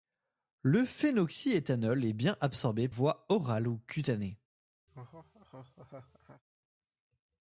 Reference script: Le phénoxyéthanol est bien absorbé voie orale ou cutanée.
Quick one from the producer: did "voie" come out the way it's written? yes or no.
yes